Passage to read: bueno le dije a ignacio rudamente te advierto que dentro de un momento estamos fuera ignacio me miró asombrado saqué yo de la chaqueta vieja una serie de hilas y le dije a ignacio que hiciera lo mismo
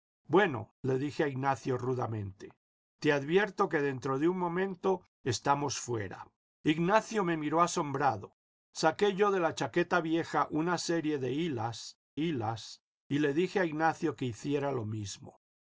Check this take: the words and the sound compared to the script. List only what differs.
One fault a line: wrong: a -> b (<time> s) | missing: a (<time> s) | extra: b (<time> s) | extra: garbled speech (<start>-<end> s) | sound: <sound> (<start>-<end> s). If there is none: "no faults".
extra: hilas (12.2 s)